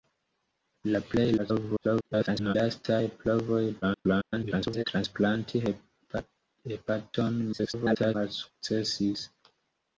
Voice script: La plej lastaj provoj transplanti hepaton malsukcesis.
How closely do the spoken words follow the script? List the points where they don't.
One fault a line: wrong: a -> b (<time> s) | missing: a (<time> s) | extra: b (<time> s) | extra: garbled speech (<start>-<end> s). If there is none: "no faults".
extra: garbled speech (1.4-2.5 s)
extra: garbled speech (3.8-4.8 s)
extra: garbled speech (7.5-8.2 s)